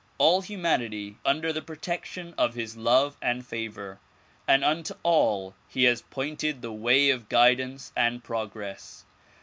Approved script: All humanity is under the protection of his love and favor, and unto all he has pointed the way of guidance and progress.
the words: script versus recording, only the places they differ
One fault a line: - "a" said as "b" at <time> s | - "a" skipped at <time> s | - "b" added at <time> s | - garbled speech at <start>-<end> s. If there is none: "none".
- "is" skipped at 1.2 s